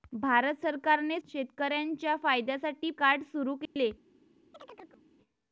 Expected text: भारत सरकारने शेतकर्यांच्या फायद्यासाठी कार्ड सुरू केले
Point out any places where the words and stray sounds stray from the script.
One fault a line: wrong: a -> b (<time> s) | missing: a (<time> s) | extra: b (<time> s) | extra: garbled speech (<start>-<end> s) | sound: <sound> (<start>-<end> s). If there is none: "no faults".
sound: dropout (3.7-3.8 s)
sound: chirp (4.5-5.0 s)